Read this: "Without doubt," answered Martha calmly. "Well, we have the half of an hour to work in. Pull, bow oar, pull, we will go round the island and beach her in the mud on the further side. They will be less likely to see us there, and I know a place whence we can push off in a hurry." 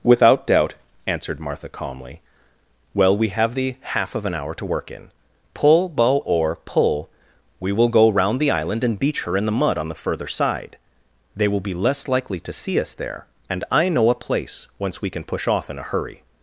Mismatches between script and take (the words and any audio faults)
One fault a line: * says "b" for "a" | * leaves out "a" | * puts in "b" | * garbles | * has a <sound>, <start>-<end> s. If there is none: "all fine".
all fine